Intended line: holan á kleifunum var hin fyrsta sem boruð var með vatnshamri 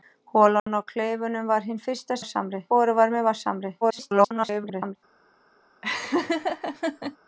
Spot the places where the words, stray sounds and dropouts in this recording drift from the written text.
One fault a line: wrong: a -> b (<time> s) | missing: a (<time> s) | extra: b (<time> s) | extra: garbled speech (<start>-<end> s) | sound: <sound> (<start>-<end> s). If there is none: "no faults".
sound: dropout (0.6-0.7 s)
wrong: sem -> vatnshamri (2.2 s)
extra: garbled speech (3.8-5.0 s)
sound: laugh (5.8-7.2 s)